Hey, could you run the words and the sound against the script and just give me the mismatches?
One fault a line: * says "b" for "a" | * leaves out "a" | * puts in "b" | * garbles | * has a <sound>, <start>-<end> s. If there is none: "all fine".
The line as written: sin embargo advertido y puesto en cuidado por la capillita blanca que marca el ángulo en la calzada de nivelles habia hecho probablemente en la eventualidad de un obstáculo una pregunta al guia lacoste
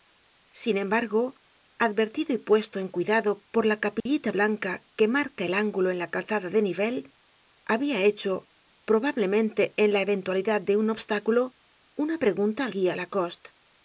* has a dropout, 4.0-4.1 s